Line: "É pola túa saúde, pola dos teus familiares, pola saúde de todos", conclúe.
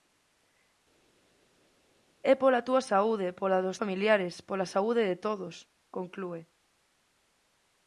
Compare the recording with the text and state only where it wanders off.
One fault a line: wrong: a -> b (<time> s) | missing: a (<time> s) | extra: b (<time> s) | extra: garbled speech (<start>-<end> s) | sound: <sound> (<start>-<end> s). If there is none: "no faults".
missing: teus (3.8 s)